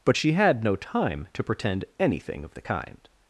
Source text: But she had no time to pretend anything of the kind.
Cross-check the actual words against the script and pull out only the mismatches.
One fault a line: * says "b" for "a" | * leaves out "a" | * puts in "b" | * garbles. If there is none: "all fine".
all fine